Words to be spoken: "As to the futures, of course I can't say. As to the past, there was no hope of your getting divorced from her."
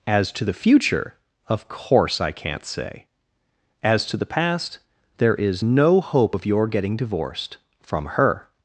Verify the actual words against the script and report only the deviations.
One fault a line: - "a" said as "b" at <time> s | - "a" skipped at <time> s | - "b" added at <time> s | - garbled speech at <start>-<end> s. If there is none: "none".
- "futures" said as "future" at 0.5 s
- "was" said as "is" at 5.3 s